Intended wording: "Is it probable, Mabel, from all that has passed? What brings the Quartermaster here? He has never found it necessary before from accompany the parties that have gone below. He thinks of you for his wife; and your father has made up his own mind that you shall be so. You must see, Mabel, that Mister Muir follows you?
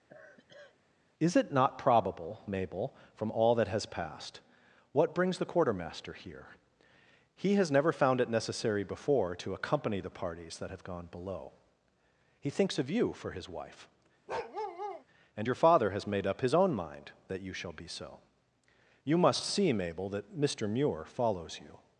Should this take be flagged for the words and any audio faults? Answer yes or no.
yes